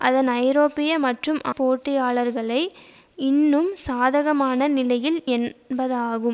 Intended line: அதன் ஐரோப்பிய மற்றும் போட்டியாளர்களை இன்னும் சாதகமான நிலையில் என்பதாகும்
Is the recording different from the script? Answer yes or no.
no